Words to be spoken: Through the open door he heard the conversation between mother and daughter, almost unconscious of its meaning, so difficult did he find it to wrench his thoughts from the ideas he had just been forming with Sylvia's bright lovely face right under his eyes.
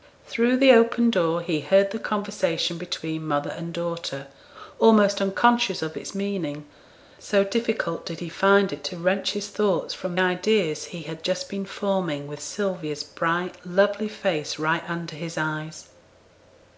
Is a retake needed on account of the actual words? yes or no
yes